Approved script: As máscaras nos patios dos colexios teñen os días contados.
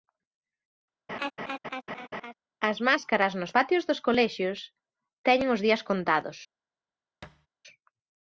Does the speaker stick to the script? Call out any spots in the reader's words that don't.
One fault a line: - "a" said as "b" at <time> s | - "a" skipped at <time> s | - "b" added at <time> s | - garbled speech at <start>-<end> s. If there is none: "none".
none